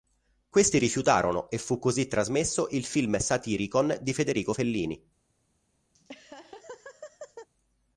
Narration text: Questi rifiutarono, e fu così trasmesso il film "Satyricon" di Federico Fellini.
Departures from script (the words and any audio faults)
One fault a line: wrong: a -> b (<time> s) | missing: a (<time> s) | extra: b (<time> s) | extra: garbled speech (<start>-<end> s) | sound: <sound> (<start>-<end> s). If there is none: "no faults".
sound: laugh (5.9-7.5 s)